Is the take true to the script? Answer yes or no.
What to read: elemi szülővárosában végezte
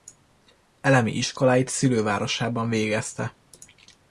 no